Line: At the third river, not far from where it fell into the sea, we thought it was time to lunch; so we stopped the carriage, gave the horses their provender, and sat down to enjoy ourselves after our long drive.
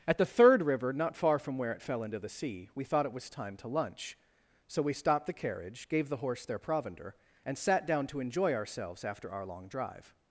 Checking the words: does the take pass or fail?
fail